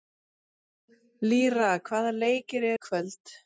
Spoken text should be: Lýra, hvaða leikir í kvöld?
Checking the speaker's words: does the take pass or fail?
pass